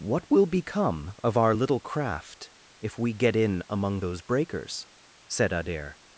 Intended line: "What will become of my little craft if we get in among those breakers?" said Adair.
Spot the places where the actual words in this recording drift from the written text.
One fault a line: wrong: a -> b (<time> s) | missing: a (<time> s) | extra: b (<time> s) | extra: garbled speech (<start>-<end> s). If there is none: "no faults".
wrong: my -> our (1.4 s)